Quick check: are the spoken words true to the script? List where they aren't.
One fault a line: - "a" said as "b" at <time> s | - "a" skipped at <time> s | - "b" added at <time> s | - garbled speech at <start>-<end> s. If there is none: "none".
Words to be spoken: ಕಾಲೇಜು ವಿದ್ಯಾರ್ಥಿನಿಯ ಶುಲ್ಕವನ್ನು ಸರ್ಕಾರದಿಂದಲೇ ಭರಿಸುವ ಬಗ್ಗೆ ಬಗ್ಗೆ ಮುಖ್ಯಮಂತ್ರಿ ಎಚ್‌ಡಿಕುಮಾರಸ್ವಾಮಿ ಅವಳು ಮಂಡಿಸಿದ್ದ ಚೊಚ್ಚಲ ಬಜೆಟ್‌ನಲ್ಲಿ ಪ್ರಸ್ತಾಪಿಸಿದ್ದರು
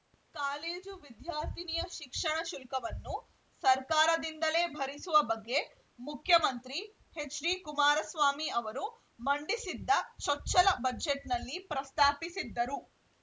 - "ಶಿಕ್ಷಣ" added at 1.9 s
- "ಬಗ್ಗೆ" skipped at 5.6 s
- "ಅವಳು" said as "ಅವರು" at 8.6 s